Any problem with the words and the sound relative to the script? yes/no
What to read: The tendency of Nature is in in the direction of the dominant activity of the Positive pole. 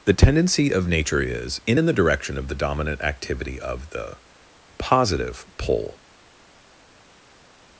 no